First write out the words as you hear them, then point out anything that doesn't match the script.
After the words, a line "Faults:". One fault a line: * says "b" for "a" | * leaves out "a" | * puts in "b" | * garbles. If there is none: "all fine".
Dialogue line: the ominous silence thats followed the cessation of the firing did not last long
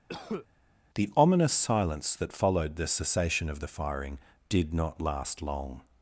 the ominous silence that followed the cessation of the firing did not last long
Faults:
* says "that" for "thats"